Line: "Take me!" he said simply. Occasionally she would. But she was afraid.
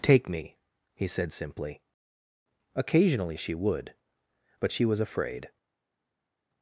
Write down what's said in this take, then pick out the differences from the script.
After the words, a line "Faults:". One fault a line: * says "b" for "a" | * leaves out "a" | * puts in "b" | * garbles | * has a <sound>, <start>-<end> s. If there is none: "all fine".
"Take me!" he said simply. Occasionally she would. But she was afraid.
Faults:
all fine